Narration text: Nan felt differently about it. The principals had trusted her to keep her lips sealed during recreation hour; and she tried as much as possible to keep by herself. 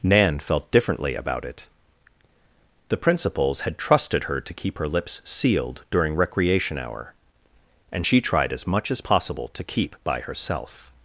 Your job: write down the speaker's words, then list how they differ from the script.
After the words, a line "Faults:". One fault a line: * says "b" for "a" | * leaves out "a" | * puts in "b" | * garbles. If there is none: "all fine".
Nan felt differently about it. The principals had trusted her to keep her lips sealed during recreation hour; and she tried as much as possible to keep by herself.
Faults:
all fine